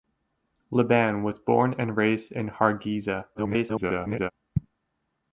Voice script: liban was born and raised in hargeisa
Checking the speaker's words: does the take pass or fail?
fail